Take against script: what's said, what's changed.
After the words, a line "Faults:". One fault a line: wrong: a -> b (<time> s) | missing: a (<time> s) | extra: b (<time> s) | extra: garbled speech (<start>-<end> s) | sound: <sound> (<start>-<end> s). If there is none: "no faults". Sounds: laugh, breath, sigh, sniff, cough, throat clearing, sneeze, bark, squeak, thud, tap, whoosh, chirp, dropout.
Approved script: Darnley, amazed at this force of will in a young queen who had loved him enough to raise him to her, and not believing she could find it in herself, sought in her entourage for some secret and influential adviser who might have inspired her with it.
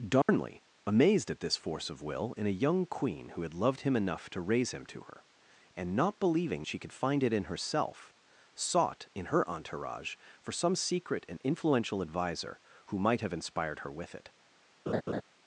Darnley, amazed at this force of will in a young queen who had loved him enough to raise him to her, and not believing she could find it in herself, sought in her entourage for some secret and influential adviser who might have inspired her with it.
Faults:
sound: dropout (0.2-0.3 s)
sound: laugh (14.9-15.2 s)